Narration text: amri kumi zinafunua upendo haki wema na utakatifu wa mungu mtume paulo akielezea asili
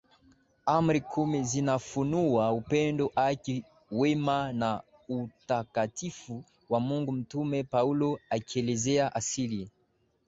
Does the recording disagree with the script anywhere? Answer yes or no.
no